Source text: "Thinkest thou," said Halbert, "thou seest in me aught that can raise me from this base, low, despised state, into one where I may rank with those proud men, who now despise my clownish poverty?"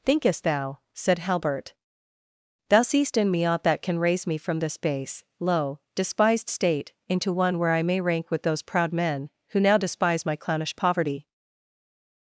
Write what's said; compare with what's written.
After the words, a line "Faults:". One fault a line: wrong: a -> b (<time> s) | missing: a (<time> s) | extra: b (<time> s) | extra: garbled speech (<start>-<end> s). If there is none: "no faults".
"Thinkest thou," said Halbert, "thou seest in me aught that can raise me from this base, low, despised state, into one where I may rank with those proud men, who now despise my clownish poverty?"
Faults:
no faults